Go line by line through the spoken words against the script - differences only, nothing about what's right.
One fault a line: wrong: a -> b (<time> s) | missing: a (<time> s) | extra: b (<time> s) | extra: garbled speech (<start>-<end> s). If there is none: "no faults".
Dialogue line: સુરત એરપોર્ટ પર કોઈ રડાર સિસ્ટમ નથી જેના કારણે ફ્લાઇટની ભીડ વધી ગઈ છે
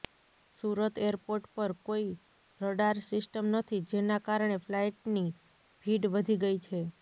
no faults